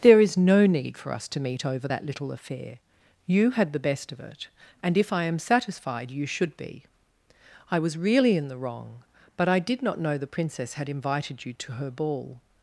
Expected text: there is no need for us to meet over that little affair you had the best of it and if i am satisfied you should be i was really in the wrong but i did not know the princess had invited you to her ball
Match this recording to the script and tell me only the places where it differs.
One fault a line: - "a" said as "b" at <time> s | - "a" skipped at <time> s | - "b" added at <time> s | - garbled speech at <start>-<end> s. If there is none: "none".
none